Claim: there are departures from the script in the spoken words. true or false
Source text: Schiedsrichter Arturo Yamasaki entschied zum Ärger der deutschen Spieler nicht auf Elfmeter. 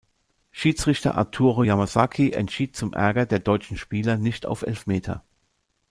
false